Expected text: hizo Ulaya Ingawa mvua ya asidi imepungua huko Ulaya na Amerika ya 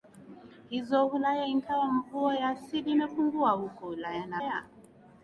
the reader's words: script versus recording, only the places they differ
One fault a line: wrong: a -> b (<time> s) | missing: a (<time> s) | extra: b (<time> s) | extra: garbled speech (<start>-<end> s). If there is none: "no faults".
missing: Amerika (4.4 s)